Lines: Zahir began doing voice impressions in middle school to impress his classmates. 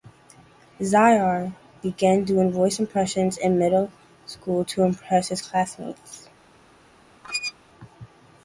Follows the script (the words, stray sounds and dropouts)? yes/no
no